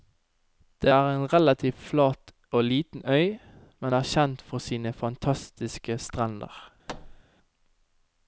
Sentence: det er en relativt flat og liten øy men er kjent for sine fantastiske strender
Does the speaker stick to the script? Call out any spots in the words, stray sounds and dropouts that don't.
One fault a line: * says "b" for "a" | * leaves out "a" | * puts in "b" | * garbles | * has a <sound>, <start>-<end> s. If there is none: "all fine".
* has a thud, 6.9-7.2 s